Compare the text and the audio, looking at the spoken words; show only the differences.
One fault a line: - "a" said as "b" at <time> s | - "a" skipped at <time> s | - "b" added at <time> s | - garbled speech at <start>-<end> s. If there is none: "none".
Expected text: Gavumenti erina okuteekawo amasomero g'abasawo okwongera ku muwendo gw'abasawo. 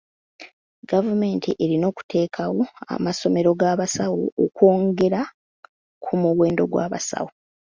none